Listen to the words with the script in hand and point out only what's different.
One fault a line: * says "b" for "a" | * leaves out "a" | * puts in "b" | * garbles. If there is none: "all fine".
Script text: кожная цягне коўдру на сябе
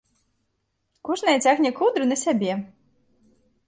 all fine